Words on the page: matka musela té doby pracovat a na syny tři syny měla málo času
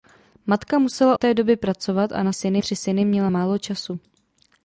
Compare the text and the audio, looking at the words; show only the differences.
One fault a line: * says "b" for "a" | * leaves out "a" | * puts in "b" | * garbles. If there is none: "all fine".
all fine